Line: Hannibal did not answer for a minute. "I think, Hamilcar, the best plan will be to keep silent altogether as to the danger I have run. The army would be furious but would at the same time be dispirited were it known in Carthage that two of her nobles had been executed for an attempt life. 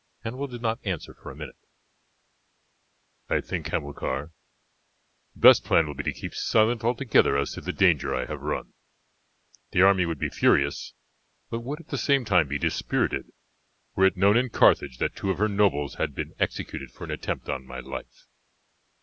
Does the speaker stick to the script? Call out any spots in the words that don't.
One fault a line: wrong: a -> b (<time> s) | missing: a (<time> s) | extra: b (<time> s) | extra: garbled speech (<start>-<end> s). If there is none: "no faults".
extra: on my (17.5 s)